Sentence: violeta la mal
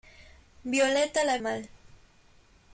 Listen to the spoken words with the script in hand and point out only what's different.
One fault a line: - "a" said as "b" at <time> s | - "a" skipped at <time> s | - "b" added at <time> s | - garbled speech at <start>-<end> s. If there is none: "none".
none